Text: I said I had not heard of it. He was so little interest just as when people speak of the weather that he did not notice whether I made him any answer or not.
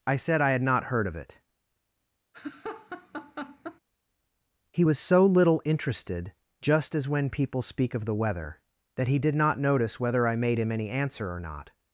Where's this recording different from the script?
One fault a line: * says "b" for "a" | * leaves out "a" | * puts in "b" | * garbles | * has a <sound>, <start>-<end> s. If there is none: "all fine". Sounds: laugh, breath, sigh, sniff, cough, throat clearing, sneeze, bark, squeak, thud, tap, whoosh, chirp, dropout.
* has a laugh, 2.3-3.8 s
* says "interested" for "interest"